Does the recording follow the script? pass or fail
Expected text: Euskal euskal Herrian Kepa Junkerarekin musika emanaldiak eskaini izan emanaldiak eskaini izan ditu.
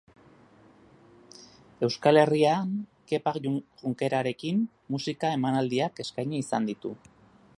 fail